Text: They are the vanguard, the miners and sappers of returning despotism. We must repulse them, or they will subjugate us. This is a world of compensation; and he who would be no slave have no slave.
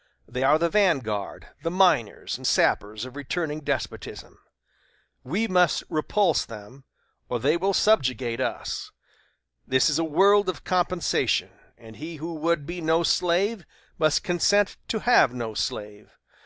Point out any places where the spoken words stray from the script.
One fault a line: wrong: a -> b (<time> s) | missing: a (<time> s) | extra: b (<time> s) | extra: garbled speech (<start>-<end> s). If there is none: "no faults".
extra: must consent to (14.0 s)